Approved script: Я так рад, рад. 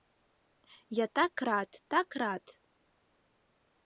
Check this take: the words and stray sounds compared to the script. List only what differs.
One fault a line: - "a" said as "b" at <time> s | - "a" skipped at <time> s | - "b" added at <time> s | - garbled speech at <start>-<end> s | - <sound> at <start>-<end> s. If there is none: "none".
- "так" added at 1.9 s